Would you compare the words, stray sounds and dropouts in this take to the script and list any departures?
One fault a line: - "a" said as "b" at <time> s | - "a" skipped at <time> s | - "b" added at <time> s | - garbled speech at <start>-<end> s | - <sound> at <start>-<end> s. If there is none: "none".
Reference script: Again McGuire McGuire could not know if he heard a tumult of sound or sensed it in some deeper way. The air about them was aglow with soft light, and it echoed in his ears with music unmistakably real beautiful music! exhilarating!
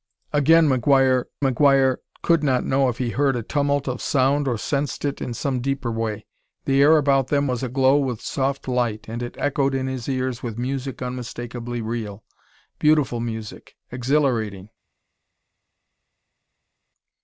none